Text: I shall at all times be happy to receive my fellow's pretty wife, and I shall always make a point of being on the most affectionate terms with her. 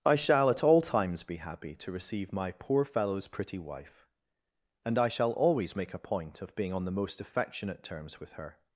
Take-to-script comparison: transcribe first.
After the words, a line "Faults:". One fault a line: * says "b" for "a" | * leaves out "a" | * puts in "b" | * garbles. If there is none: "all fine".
I shall at all times be happy to receive my poor fellow's pretty wife, and I shall always make a point of being on the most affectionate terms with her.
Faults:
* puts in "poor"